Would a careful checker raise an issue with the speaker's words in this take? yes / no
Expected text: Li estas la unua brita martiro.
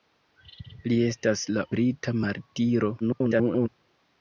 yes